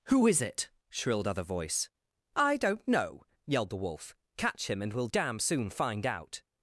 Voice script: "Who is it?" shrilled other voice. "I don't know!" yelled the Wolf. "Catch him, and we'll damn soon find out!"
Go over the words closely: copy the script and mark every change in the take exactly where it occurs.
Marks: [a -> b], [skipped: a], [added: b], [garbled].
"Who is it?" shrilled other voice. "I don't know!" yelled the Wolf. "Catch him, and we'll damn soon find out!"